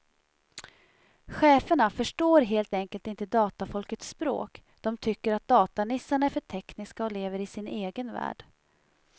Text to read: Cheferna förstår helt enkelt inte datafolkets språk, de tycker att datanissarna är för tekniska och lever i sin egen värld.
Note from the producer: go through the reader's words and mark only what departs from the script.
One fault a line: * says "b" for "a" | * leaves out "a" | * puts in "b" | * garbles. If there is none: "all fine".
all fine